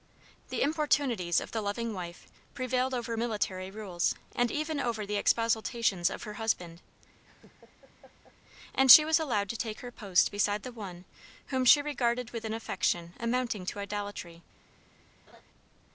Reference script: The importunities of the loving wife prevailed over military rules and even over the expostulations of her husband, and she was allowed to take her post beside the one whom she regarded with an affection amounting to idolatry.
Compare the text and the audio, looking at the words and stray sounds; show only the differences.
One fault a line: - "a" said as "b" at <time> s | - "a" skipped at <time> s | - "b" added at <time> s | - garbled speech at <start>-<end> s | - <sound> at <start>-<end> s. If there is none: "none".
- laugh at 7.2-8.4 s
- laugh at 15.3-15.4 s